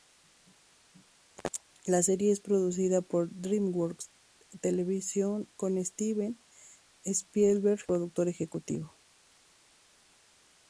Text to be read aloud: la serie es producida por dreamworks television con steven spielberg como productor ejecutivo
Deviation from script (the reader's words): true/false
false